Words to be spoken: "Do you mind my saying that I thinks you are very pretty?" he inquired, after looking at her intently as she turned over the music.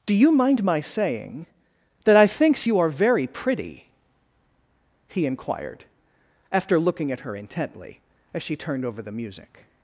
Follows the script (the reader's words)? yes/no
yes